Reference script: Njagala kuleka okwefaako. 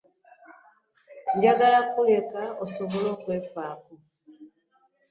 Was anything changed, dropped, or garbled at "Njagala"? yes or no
no